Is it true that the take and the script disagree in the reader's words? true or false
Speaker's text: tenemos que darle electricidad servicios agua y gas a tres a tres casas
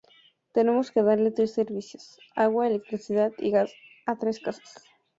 true